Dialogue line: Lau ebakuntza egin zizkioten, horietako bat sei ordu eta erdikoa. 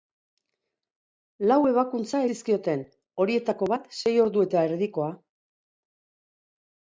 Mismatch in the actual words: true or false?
true